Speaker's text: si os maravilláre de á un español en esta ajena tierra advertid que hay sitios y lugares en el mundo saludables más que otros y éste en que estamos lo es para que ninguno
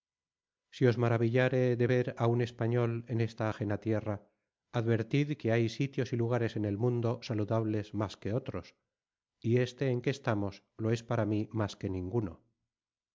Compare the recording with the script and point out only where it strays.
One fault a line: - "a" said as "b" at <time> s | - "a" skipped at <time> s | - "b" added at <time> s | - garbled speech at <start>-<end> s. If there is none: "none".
- "ver" added at 1.9 s
- "mí más" added at 11.3 s